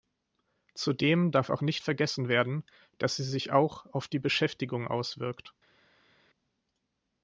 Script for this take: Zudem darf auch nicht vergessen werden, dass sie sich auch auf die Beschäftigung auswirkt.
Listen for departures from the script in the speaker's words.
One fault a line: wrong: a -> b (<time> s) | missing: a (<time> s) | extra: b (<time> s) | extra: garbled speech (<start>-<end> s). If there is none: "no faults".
no faults